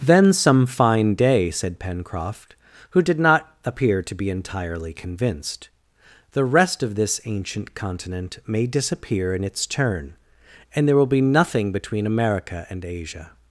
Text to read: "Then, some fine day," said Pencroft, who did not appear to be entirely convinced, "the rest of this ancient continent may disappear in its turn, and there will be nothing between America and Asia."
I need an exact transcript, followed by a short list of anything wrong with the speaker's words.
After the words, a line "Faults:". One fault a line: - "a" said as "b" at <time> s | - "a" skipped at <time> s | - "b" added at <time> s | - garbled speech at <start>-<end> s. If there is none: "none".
"Then, some fine day," said Pencroft, who did not appear to be entirely convinced, "the rest of this ancient continent may disappear in its turn, and there will be nothing between America and Asia."
Faults:
none